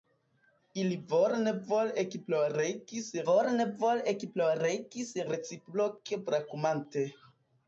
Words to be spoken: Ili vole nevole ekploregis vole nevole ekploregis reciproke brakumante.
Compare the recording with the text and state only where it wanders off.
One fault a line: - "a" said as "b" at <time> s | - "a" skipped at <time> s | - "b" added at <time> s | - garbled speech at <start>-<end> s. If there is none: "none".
none